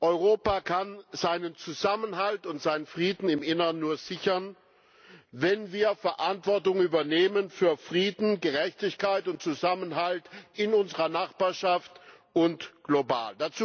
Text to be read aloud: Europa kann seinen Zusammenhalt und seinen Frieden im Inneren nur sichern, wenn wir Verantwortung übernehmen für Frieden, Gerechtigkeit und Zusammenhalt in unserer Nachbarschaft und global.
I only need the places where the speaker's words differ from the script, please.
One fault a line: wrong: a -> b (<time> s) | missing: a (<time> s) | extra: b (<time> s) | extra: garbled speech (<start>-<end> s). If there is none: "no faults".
no faults